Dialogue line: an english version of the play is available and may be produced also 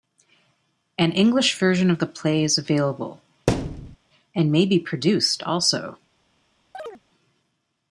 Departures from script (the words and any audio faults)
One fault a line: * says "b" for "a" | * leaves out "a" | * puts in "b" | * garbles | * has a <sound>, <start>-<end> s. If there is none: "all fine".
* has a thud, 3.5-4.0 s
* has a chirp, 6.7-7.0 s